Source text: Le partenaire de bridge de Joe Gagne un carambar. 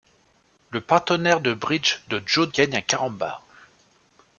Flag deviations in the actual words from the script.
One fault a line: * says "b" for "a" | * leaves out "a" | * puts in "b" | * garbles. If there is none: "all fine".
all fine